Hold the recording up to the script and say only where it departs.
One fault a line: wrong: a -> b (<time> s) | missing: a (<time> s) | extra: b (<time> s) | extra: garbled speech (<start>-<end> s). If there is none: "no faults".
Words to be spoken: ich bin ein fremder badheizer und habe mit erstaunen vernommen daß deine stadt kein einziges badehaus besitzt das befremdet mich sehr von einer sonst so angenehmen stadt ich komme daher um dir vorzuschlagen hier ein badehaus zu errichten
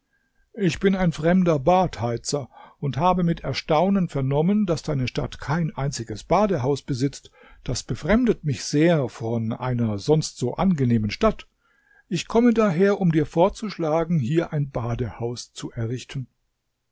no faults